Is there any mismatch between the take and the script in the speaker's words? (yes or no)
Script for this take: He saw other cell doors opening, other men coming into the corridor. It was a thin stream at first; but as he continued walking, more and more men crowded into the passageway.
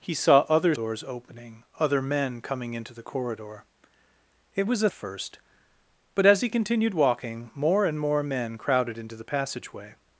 yes